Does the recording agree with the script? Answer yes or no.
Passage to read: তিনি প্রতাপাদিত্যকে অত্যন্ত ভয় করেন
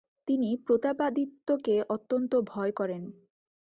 yes